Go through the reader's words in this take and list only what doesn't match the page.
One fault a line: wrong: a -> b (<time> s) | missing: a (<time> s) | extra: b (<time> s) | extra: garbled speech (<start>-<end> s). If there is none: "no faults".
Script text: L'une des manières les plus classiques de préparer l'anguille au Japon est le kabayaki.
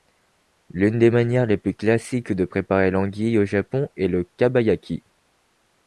no faults